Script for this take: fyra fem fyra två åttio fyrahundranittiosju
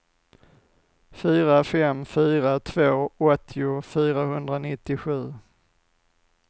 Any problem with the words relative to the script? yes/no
no